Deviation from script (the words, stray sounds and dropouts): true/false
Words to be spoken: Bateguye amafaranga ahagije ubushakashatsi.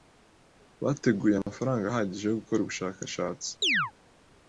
true